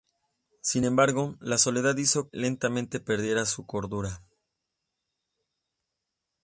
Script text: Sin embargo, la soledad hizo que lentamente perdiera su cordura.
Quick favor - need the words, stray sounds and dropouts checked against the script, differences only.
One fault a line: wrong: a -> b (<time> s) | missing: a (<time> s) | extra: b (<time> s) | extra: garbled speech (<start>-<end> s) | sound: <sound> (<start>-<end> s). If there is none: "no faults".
missing: que (2.3 s)